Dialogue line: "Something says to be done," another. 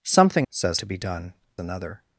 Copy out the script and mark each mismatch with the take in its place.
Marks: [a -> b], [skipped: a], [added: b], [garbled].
"Something says to be done," another.